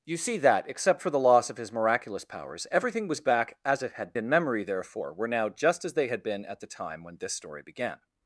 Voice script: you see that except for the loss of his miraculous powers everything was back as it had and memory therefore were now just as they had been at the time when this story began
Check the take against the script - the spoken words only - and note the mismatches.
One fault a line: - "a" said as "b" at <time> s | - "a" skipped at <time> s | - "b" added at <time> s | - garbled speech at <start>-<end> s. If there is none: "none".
none